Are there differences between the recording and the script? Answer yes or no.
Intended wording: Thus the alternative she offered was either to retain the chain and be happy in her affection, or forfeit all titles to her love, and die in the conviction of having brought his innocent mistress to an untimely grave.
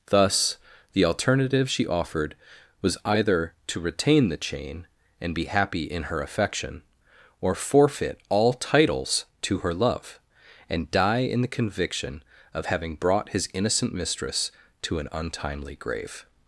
no